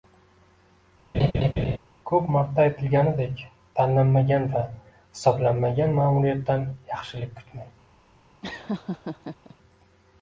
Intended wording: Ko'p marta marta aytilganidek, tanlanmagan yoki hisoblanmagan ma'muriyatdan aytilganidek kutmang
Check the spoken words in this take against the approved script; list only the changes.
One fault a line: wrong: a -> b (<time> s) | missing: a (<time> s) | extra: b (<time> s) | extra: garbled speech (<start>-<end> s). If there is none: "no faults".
missing: marta (2.6 s)
wrong: yoki -> va (4.5 s)
wrong: aytilganidek -> yaxshilik (6.9 s)